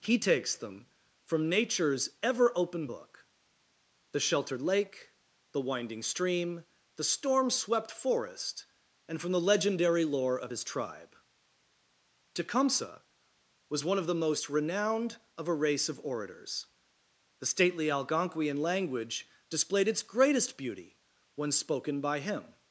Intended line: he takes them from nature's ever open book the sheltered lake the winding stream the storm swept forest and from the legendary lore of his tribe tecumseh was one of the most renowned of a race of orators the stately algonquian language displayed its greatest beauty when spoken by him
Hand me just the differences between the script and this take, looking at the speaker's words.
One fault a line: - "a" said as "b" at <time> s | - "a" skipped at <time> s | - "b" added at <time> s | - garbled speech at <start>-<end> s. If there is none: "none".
none